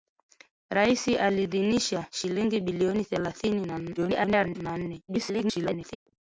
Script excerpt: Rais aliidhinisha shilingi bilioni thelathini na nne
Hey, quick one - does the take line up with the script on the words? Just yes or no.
no